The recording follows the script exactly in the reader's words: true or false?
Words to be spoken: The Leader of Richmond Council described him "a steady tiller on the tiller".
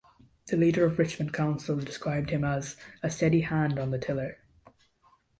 false